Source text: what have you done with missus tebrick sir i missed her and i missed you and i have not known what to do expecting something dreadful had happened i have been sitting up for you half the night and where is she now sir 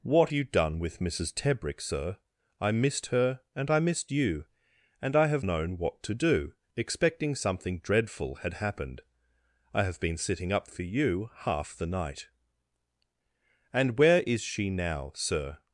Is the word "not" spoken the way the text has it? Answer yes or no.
no